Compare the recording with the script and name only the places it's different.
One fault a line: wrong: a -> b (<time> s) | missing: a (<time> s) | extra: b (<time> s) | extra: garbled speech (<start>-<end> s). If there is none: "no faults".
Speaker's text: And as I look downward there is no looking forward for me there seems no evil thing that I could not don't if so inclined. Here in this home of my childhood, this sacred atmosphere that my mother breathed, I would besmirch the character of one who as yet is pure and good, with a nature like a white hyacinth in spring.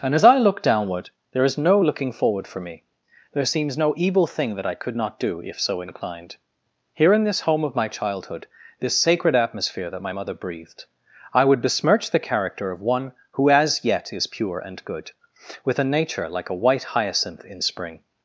wrong: don't -> do (5.2 s)